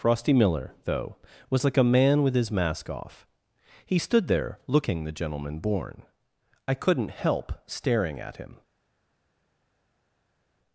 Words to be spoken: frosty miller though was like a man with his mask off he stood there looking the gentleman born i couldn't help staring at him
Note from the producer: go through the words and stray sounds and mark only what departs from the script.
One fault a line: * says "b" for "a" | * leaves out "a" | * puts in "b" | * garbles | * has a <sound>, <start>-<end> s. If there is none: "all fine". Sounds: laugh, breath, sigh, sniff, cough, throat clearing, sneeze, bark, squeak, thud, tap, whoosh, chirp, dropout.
all fine